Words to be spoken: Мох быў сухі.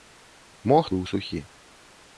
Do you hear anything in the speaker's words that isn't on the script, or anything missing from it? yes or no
no